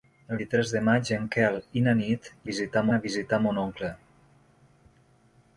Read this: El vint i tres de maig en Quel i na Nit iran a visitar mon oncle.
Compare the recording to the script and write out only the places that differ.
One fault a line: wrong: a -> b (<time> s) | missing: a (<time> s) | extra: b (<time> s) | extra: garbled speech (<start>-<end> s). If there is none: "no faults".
missing: vint (0.4 s)
wrong: iran -> visitar (2.5 s)